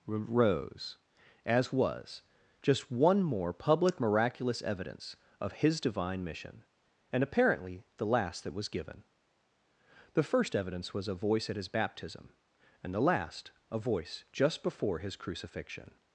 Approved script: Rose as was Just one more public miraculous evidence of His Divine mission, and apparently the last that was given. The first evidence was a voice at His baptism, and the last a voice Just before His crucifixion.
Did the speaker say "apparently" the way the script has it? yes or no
yes